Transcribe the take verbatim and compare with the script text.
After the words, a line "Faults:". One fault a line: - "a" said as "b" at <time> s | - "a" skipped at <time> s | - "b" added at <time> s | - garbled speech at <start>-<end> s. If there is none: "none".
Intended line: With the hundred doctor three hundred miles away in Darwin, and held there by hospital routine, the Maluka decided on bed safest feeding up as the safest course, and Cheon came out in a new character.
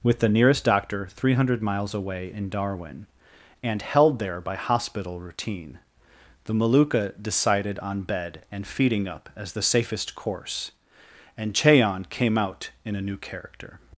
With the nearest doctor three hundred miles away in Darwin, and held there by hospital routine, the Maluka decided on bed and feeding up as the safest course, and Cheon came out in a new character.
Faults:
- "hundred" said as "nearest" at 0.3 s
- "safest" said as "and" at 8.5 s